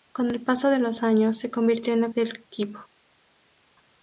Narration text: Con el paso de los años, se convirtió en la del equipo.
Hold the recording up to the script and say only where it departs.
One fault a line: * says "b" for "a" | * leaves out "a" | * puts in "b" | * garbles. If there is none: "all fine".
all fine